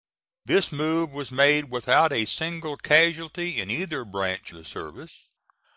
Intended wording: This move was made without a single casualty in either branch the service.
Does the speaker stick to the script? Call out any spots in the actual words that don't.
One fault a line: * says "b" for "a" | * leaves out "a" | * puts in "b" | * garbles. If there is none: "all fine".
all fine